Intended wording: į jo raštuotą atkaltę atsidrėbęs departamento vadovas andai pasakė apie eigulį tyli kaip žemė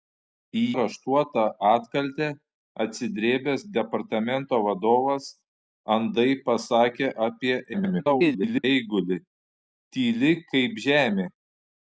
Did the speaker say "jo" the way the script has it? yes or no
no